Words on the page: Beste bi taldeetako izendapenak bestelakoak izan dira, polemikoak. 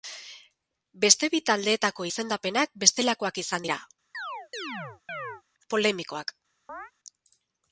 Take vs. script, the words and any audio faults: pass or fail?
fail